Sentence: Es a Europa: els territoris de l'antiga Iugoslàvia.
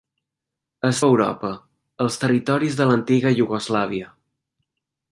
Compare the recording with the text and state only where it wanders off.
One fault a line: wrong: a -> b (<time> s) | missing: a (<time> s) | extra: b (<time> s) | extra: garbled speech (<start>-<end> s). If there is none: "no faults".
no faults